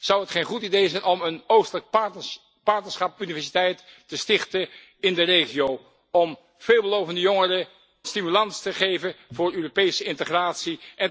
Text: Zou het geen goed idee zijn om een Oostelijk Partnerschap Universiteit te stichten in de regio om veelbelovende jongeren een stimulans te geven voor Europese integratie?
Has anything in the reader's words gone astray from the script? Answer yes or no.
yes